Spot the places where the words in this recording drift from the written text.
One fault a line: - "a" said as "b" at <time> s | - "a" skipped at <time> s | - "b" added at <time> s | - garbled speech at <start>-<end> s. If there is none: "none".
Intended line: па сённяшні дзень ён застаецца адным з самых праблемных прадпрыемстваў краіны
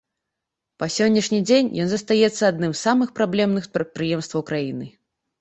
none